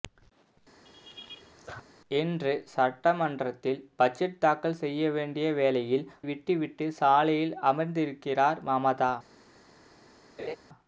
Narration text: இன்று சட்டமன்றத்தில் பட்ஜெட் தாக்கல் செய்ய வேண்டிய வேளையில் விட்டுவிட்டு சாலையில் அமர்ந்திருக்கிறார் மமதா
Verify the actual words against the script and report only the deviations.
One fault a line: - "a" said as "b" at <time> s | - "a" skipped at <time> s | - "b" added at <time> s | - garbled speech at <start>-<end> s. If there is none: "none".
none